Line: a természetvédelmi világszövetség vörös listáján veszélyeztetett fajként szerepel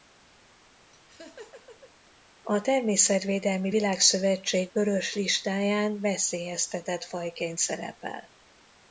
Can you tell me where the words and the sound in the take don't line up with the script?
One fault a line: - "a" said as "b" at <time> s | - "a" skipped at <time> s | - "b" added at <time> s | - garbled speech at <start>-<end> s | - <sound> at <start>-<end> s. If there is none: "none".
- laugh at 0.9-1.9 s